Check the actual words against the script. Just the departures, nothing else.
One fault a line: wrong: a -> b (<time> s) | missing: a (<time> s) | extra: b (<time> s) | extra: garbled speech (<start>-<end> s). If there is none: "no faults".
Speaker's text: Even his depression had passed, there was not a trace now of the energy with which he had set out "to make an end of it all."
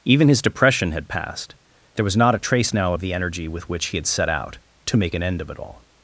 no faults